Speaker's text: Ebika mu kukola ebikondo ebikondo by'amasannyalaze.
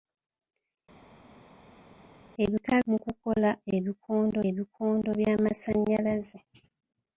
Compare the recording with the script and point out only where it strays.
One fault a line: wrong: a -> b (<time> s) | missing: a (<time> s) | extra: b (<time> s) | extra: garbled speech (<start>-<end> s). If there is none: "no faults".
no faults